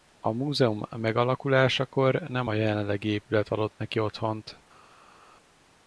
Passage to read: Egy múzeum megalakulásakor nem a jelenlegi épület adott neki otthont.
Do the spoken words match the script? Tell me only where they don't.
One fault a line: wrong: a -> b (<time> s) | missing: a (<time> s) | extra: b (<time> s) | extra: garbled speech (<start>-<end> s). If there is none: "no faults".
wrong: Egy -> A (0.2 s)